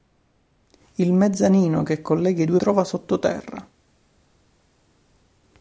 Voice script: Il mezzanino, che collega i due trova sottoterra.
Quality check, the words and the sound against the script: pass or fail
pass